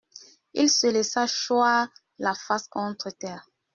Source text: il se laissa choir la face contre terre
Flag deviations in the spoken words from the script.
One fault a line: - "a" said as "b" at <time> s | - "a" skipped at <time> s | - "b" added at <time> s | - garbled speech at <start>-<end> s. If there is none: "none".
none